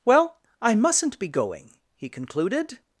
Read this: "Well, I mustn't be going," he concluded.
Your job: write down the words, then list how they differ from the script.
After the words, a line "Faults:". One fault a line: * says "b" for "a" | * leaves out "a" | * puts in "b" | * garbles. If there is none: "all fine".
"Well, I mustn't be going," he concluded.
Faults:
all fine